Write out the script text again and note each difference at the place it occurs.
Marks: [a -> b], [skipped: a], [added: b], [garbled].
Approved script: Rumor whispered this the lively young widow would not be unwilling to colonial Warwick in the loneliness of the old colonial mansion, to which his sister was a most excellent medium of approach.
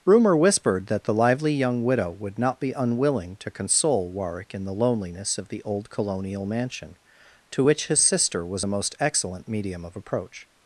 Rumor whispered [this -> that] the lively young widow would not be unwilling to [colonial -> console] Warwick in the loneliness of the old colonial mansion, to which his sister was a most excellent medium of approach.